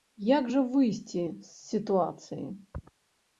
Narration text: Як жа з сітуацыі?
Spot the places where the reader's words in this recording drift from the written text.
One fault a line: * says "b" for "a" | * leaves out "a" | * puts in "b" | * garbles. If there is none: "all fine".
* puts in "выйсці"